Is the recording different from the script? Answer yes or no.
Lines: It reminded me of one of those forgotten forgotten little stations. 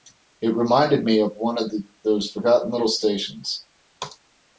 yes